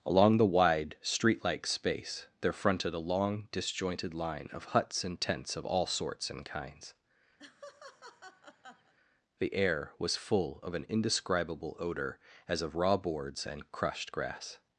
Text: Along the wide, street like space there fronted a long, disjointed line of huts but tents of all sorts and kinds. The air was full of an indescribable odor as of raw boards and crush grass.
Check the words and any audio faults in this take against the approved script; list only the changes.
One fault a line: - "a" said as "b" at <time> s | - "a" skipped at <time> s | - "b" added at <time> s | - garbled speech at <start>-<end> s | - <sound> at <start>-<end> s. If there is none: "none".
- "but" said as "and" at 5.0 s
- laugh at 7.4-8.9 s
- "crush" said as "crushed" at 13.7 s